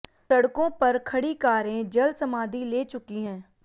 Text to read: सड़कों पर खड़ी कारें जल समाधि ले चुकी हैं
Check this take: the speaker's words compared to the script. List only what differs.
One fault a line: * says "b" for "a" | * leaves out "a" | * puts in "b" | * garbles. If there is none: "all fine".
all fine